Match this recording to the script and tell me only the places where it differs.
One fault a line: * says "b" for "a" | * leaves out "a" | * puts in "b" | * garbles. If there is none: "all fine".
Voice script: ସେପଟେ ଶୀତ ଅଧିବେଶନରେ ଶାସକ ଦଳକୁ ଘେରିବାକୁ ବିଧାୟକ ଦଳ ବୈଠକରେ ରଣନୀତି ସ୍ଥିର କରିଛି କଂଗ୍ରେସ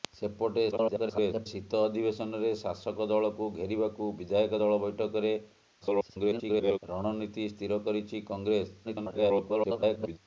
* garbles
* garbles
* garbles